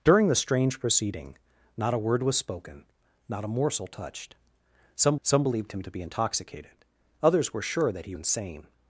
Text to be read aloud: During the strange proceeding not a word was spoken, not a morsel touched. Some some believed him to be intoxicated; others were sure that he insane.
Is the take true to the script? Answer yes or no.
yes